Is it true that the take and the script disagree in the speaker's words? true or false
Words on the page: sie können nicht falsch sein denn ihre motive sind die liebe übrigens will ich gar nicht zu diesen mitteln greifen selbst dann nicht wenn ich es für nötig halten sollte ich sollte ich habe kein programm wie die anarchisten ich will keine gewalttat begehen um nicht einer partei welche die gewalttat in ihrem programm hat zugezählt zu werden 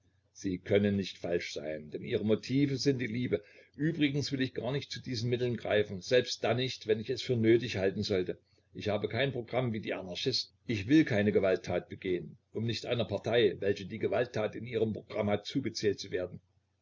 true